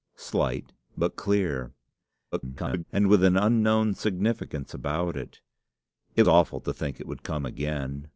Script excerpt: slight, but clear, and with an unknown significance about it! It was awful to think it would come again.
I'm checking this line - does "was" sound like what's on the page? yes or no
no